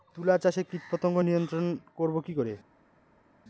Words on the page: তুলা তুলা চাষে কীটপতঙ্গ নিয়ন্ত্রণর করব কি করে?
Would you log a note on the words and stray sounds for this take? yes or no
yes